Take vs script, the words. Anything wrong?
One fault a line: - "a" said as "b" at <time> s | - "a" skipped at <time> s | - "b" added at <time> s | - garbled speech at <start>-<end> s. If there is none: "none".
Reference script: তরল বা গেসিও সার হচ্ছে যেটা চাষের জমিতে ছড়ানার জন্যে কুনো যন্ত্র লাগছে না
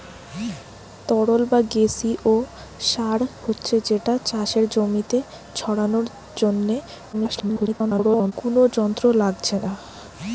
- garbled speech at 7.1-8.3 s